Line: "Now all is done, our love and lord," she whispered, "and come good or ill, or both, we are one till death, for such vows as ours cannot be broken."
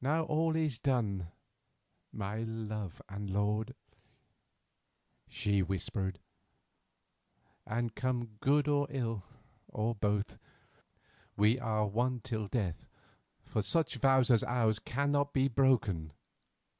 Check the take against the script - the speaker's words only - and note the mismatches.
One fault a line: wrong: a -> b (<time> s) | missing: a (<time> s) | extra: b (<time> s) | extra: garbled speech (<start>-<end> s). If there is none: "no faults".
wrong: our -> my (2.1 s)